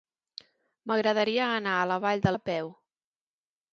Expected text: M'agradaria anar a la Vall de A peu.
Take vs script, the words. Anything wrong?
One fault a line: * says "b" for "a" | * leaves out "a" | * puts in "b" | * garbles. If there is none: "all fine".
all fine